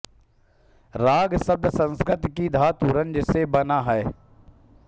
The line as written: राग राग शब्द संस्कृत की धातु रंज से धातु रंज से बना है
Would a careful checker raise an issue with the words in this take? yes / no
yes